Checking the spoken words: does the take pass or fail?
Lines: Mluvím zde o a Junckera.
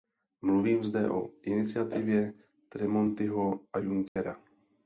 fail